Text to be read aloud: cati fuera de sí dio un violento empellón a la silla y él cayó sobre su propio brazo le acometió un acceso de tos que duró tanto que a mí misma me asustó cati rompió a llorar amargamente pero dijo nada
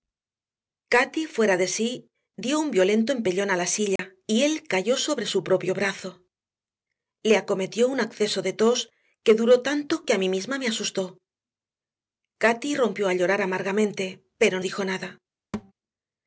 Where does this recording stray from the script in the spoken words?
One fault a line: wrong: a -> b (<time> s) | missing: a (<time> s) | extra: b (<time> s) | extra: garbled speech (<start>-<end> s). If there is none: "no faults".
no faults